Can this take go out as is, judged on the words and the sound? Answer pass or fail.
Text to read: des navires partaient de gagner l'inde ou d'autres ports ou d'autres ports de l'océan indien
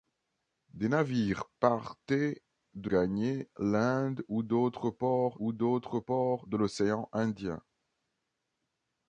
pass